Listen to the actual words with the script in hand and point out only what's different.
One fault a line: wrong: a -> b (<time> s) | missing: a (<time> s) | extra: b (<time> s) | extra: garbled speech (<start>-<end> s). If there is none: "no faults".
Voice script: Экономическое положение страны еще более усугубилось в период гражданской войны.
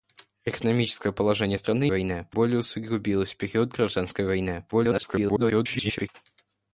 wrong: еще -> войны (1.9 s)
extra: garbled speech (4.7-6.1 s)